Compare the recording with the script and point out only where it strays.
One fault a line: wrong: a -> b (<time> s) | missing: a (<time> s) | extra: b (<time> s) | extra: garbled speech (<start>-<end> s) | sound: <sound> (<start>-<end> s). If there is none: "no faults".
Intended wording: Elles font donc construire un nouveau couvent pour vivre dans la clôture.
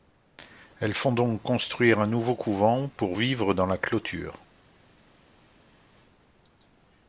no faults